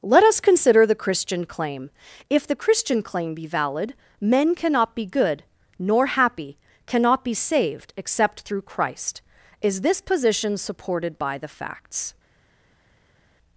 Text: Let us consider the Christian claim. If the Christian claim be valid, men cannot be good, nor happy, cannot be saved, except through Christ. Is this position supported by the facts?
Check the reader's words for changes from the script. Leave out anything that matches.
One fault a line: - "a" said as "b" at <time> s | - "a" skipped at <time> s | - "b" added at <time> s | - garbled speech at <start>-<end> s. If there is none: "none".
none